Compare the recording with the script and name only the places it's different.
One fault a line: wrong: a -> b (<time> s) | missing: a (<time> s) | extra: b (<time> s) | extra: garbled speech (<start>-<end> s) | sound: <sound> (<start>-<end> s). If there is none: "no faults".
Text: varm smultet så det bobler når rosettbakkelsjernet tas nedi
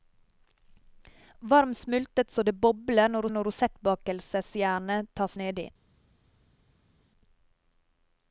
extra: når (3.3 s)